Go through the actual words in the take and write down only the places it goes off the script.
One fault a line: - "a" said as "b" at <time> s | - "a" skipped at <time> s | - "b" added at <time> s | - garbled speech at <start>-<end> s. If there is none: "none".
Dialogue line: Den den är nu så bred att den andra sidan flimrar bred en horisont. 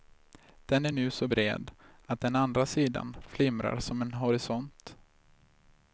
- "den" skipped at 0.8 s
- "bred" said as "som" at 3.8 s